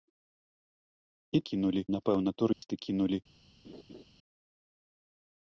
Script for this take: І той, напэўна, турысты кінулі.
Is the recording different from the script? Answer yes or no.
yes